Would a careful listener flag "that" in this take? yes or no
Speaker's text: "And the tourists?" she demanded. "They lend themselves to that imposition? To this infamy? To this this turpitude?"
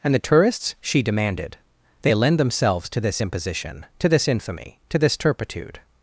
yes